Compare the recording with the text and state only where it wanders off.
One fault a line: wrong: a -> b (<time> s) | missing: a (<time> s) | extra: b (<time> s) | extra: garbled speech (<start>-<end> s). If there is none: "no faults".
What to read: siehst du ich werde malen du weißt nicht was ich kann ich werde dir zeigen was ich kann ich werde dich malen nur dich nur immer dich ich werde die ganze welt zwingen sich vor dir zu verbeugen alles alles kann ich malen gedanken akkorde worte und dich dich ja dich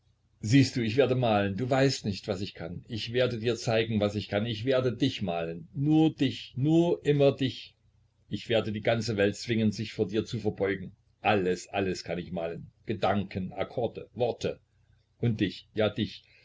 missing: dich (15.7 s)